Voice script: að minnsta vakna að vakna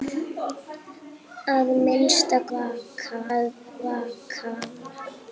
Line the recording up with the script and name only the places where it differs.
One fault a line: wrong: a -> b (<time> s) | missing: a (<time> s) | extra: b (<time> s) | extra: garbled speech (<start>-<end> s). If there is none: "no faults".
no faults